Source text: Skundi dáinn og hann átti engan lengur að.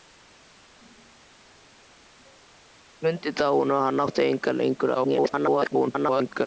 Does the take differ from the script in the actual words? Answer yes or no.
yes